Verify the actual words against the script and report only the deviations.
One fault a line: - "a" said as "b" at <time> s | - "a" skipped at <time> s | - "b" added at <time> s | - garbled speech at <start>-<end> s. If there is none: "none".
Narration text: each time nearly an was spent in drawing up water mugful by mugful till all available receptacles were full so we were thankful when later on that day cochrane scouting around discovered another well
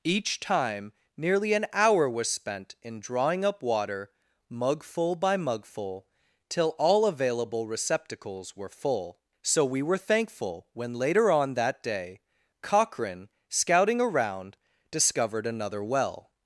- "hour" added at 1.7 s